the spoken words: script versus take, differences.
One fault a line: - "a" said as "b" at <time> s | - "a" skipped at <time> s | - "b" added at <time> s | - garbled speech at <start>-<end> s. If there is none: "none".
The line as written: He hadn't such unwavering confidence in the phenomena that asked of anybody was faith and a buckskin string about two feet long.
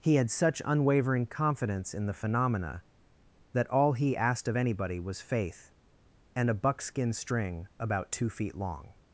- "hadn't" said as "had" at 0.1 s
- "all he" added at 3.7 s